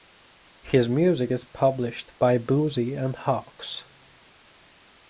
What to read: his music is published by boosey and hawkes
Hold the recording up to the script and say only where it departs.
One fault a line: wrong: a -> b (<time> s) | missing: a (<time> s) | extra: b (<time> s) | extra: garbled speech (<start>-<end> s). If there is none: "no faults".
no faults